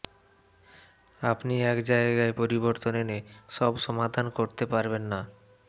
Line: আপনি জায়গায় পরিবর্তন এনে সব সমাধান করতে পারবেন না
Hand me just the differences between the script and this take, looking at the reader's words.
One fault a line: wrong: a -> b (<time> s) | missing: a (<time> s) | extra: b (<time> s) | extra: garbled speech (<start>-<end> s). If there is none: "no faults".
extra: এক (1.6 s)